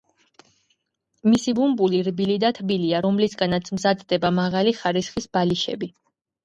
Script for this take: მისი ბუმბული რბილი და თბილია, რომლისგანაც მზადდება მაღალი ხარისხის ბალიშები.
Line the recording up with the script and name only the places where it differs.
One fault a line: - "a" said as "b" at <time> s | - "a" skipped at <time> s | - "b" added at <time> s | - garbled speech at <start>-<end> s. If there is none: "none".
none